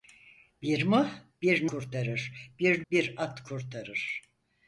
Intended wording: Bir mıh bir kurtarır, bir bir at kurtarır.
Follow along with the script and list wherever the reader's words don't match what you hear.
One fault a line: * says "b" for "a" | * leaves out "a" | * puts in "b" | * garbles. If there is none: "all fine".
all fine